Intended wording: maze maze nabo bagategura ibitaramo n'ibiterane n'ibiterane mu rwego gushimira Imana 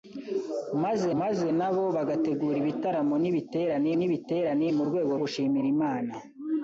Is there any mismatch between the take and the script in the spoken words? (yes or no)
no